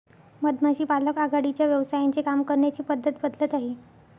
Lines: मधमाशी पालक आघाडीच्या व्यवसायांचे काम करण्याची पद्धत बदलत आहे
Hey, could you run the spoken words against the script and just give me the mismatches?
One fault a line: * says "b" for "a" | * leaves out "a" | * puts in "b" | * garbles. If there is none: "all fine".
all fine